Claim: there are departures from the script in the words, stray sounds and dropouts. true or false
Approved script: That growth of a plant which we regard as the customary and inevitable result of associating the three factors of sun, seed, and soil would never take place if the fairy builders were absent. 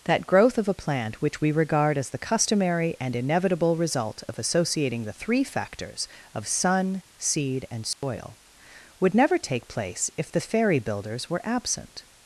true